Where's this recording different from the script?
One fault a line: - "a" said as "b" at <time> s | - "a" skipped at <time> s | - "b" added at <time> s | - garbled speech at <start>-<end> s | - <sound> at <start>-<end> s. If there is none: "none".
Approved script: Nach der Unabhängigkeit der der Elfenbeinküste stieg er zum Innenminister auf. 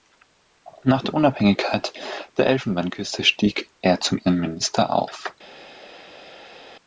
- "der" skipped at 2.5 s